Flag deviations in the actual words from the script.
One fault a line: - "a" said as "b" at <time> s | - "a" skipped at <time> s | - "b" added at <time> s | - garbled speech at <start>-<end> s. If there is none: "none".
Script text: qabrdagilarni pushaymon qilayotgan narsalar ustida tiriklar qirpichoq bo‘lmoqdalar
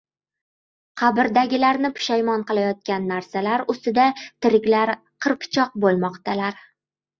none